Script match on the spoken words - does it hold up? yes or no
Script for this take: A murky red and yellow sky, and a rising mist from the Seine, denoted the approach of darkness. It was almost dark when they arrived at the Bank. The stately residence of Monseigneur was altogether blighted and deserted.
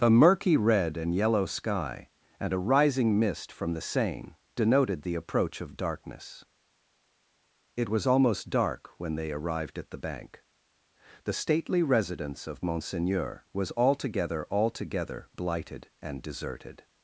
no